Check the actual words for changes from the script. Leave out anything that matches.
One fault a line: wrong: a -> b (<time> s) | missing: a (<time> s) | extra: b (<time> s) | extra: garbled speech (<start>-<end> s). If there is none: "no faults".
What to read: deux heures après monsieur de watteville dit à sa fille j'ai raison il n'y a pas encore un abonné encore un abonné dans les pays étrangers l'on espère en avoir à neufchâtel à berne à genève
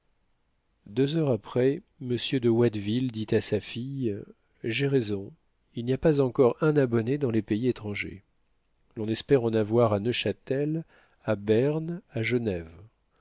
missing: encore un abonné (7.2 s)